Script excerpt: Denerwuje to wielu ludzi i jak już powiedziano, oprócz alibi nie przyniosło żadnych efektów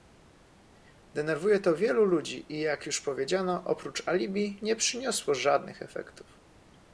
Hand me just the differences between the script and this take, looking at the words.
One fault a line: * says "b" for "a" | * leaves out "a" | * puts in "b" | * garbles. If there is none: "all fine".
all fine